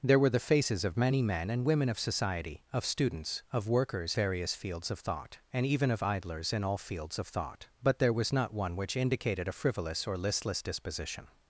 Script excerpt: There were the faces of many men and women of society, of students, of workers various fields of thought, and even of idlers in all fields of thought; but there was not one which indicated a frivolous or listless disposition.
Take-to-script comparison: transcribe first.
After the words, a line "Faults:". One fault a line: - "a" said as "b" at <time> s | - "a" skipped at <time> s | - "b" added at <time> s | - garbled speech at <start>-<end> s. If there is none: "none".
There were the faces of many men and women of society, of students, of workers various fields of thought, and even of idlers in all fields of thought; but there was not one which indicated a frivolous or listless disposition.
Faults:
none